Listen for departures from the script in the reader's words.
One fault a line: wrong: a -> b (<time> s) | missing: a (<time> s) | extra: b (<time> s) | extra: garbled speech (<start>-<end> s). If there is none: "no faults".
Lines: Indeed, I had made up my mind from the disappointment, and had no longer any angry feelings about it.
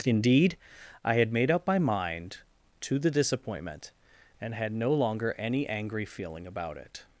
wrong: from -> to (2.8 s)
wrong: feelings -> feeling (6.0 s)